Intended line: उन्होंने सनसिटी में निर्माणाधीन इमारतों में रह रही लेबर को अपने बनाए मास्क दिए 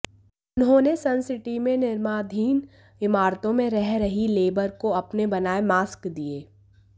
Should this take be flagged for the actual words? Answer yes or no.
no